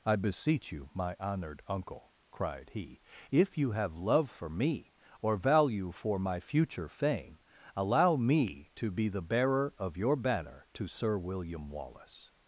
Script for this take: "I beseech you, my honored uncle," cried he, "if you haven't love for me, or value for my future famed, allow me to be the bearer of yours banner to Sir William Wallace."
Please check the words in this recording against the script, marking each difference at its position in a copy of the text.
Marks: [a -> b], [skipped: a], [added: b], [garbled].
"I beseech you, my honored uncle," cried he, "if you [haven't -> have] love for me, or value for my future [famed, -> fame] allow me to be the bearer of [yours -> your] banner to Sir William Wallace."